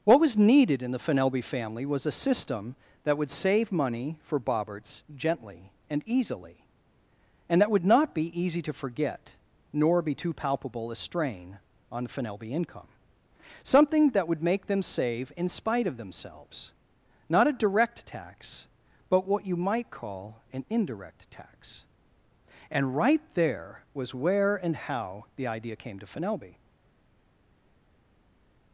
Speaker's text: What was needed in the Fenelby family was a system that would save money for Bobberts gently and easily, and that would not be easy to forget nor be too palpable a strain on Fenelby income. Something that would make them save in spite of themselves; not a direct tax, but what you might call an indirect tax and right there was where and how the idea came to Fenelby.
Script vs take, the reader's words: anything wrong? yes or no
no